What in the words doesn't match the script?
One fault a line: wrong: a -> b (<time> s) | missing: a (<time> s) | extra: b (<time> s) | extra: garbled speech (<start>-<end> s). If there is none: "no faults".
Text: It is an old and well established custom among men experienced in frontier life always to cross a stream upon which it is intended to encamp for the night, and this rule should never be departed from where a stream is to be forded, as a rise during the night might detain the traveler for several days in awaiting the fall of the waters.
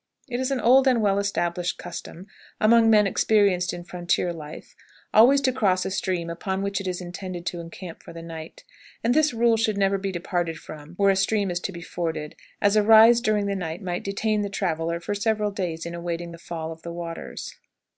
no faults